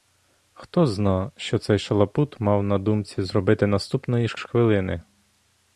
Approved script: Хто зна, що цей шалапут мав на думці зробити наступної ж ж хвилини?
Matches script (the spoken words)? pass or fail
pass